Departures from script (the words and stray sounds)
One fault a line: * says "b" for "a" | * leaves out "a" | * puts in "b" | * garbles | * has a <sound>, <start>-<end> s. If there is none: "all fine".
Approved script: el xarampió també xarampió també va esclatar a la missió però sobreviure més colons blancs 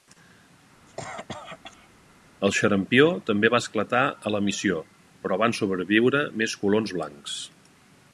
* has a cough, 0.9-1.9 s
* leaves out "xarampió també"
* puts in "van"